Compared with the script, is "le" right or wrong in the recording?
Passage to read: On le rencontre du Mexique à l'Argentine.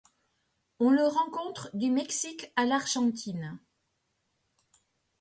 right